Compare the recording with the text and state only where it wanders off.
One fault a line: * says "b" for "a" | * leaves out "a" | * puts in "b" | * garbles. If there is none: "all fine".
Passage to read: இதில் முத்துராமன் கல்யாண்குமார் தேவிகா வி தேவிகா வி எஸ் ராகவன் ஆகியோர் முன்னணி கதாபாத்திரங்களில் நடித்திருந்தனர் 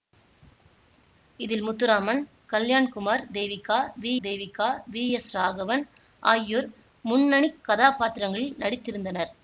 all fine